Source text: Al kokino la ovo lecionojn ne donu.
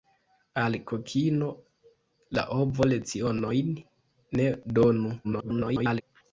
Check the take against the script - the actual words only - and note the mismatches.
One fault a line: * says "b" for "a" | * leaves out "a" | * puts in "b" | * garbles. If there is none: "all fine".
* garbles